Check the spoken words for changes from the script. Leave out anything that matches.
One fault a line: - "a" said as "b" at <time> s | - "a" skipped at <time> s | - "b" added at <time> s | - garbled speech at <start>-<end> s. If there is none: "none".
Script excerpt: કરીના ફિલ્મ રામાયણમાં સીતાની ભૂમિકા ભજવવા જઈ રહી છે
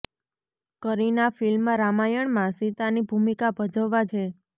- "જઈ રહી" skipped at 4.0 s